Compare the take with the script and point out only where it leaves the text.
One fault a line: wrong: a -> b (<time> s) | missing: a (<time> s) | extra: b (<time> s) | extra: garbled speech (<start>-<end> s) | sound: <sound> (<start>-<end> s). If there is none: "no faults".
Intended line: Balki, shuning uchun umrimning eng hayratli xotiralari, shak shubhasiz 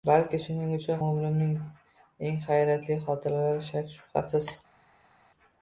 no faults